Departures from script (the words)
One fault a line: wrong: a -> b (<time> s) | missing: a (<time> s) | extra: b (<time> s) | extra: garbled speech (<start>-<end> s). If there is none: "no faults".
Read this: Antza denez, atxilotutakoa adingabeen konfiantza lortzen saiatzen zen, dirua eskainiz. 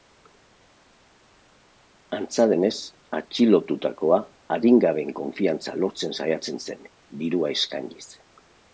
no faults